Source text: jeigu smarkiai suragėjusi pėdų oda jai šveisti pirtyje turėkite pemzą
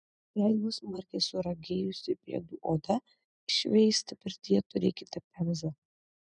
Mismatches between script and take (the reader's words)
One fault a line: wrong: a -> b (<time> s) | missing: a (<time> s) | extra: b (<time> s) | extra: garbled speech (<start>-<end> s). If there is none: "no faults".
missing: jai (3.0 s)